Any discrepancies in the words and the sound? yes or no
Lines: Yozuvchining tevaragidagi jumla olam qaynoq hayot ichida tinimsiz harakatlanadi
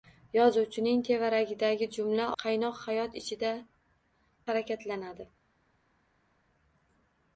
yes